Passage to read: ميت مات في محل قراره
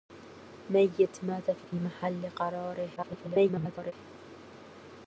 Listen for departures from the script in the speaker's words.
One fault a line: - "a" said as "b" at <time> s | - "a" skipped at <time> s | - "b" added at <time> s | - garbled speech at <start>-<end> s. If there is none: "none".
- "في" added at 1.6 s
- garbled speech at 3.0-3.9 s